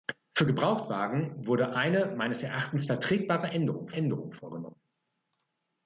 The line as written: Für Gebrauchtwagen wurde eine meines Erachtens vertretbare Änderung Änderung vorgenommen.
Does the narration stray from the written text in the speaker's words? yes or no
no